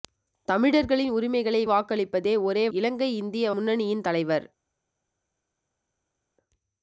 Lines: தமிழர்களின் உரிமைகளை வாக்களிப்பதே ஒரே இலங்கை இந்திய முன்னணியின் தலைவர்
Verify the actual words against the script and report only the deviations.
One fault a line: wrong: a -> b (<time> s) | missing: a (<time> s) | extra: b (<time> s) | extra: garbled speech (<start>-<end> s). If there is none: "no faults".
no faults